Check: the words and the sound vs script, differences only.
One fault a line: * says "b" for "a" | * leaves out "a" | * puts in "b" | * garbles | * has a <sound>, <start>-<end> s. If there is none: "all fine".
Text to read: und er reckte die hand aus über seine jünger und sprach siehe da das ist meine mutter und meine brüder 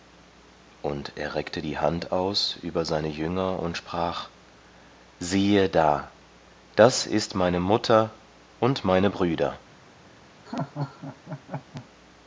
* has a laugh, 10.5-11.9 s